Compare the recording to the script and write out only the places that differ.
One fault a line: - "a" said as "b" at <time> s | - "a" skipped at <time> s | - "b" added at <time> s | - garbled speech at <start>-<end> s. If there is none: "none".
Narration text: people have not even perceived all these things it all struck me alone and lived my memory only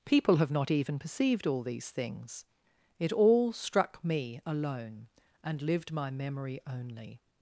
none